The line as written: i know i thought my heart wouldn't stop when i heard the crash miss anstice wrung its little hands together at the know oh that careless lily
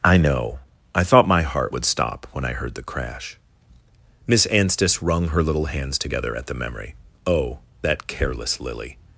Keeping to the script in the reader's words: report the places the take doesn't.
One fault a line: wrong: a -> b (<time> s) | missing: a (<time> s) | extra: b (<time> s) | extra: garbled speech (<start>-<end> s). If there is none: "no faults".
wrong: wouldn't -> would (1.7 s)
wrong: its -> her (5.3 s)
wrong: know -> memory (6.5 s)